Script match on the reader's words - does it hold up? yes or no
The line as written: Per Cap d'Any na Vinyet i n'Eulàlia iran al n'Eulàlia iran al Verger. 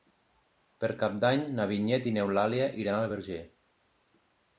no